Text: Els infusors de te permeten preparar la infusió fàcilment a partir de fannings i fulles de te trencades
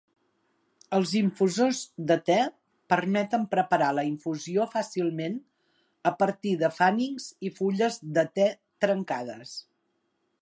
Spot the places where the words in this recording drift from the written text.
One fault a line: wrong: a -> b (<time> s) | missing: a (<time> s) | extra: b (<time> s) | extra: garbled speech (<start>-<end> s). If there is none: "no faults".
no faults